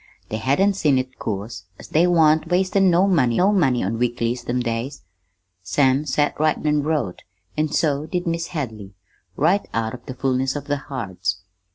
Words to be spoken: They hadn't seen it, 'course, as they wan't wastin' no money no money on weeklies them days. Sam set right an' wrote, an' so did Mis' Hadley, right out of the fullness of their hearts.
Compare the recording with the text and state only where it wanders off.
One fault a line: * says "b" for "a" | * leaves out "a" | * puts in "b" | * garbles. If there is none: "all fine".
all fine